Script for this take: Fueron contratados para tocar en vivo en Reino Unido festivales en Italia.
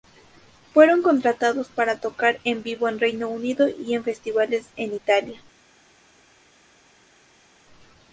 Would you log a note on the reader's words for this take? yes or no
yes